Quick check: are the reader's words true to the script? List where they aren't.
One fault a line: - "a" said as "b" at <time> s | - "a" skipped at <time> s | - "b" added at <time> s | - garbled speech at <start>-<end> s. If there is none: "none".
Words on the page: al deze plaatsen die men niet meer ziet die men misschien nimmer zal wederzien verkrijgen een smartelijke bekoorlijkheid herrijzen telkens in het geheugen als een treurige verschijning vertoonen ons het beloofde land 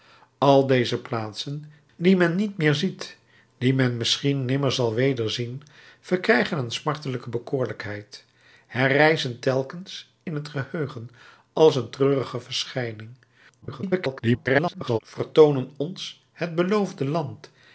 - garbled speech at 13.6-15.0 s